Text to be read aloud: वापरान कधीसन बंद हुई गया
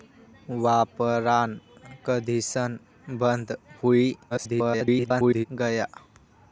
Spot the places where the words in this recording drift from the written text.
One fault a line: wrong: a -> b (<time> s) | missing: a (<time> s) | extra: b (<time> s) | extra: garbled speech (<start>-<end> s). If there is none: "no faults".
extra: garbled speech (4.3-5.5 s)